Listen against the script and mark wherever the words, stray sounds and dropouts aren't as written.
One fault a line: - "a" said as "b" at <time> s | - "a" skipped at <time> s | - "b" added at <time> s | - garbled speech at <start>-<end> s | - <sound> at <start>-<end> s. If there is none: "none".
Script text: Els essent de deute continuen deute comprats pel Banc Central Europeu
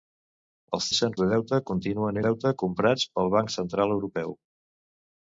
none